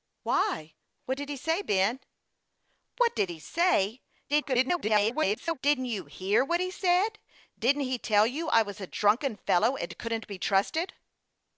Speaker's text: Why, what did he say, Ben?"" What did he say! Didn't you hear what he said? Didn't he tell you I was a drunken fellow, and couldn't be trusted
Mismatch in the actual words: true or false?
true